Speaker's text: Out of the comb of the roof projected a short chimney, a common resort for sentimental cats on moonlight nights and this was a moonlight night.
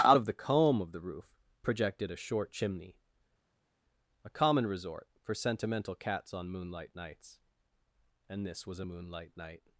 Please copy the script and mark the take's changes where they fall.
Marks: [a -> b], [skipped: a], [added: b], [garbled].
Out of the comb of the roof projected a short chimney, a common resort for sentimental cats on moonlight nights and this was a moonlight night.